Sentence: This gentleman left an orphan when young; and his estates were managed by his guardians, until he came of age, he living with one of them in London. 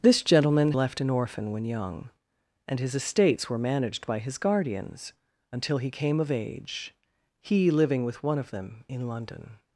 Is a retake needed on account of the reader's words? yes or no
no